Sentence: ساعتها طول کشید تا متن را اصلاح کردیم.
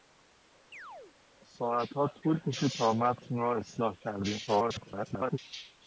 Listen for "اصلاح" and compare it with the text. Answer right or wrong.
right